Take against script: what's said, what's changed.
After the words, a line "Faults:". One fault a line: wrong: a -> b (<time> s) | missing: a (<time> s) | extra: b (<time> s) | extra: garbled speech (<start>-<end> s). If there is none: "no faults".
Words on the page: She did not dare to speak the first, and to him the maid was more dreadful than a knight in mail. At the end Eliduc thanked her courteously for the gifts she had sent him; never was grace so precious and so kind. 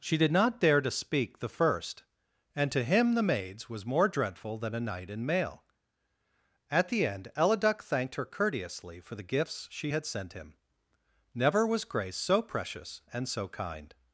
She did not dare to speak the first, and to him the maids was more dreadful than a knight in mail. At the end Eliduc thanked her courteously for the gifts she had sent him; never was grace so precious and so kind.
Faults:
wrong: maid -> maids (3.2 s)